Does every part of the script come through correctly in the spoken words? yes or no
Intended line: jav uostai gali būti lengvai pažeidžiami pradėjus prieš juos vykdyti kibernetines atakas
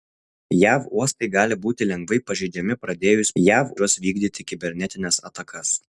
no